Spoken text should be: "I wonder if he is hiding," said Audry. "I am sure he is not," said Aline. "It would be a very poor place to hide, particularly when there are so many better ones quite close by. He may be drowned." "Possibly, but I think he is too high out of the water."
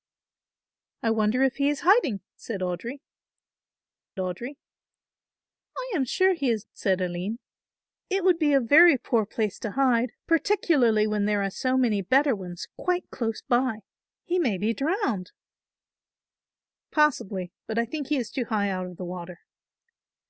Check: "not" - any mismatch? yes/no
yes